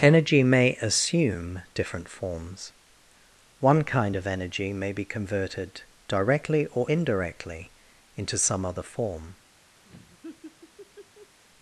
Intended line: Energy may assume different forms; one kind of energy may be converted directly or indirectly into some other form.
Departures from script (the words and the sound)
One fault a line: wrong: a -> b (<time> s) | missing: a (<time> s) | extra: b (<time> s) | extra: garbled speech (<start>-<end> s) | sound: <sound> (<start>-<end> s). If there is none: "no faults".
sound: laugh (9.8-11.4 s)